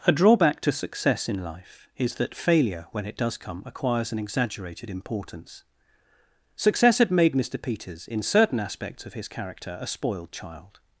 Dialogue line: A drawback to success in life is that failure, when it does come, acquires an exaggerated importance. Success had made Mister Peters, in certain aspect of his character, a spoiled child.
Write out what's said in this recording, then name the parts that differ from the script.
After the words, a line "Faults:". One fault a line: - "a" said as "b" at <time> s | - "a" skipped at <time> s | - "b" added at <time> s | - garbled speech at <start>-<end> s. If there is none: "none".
A drawback to success in life is that failure, when it does come, acquires an exaggerated importance. Success had made Mister Peters, in certain aspects of his character, a spoiled child.
Faults:
- "aspect" said as "aspects" at 8.6 s